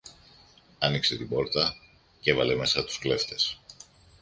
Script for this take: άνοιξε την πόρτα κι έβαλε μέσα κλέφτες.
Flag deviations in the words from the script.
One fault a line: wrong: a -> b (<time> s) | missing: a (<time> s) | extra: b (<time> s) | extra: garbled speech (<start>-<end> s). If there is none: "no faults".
extra: τους (2.8 s)